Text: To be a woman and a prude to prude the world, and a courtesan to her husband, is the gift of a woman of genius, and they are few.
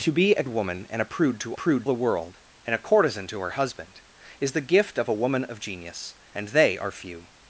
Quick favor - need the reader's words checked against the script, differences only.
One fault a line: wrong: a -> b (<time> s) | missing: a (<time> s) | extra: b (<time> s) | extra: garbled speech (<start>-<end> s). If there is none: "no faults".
no faults